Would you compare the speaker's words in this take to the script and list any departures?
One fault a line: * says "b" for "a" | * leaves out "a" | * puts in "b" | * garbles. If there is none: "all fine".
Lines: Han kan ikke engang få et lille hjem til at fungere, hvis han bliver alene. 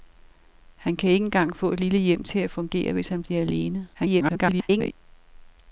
* garbles